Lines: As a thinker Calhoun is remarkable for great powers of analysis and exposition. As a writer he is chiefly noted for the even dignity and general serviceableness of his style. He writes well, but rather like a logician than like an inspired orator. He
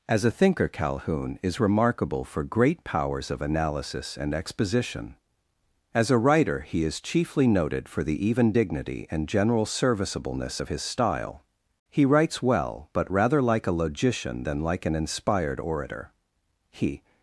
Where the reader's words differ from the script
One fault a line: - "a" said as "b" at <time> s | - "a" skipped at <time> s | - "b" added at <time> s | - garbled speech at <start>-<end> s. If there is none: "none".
none